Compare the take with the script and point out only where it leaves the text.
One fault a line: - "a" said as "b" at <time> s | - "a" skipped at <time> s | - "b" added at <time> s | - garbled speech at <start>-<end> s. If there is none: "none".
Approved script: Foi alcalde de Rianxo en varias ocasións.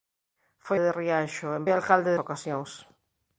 - "alcalde" skipped at 0.8 s
- "varias" said as "alcalde" at 1.7 s